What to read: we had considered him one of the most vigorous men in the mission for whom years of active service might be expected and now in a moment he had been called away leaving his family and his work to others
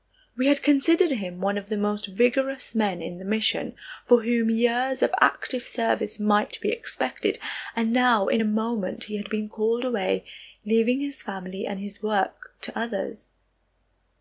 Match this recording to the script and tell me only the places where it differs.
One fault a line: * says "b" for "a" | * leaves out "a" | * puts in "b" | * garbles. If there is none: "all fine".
all fine